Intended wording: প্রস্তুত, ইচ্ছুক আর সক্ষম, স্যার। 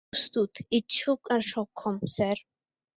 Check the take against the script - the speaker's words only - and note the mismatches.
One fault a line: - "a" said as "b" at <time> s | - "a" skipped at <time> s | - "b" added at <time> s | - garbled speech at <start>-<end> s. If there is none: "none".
none